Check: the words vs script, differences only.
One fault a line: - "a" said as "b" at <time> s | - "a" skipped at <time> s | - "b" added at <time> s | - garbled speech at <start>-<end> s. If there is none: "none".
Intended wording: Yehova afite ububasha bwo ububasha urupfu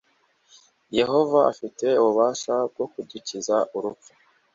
- "ububasha" said as "kudukiza" at 2.9 s